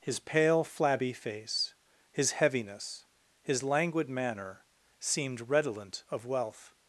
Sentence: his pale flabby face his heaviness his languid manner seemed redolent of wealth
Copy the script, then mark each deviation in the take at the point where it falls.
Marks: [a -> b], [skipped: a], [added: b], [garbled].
his pale flabby face his heaviness his languid manner seemed redolent of wealth